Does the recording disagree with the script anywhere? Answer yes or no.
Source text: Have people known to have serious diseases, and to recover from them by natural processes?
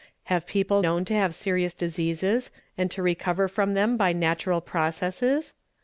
no